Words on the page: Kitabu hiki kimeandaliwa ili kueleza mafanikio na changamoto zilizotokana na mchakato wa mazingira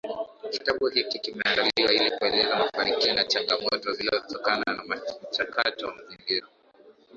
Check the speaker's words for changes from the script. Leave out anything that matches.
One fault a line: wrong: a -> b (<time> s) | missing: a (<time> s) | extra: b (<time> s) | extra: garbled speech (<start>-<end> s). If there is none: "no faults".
no faults